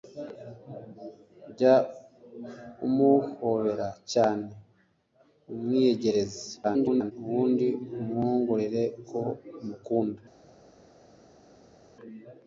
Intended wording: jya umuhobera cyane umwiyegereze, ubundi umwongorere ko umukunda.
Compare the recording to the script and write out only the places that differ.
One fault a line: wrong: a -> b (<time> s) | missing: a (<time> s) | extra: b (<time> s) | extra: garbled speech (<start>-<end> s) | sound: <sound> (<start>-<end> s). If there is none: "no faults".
extra: garbled speech (6.6-7.1 s)